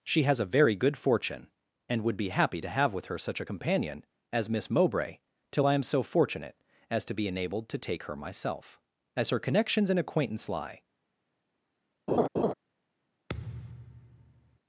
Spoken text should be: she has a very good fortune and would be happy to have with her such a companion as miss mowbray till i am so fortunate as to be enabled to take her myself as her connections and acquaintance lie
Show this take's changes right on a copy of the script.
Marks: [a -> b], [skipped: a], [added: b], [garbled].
she has a very good fortune and would be happy to have with her such a companion as miss mowbray till i am so fortunate as to be enabled to take her myself as her connections and acquaintance lie